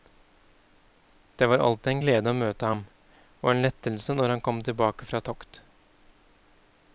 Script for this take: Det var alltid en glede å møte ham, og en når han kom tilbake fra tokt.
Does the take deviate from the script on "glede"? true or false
false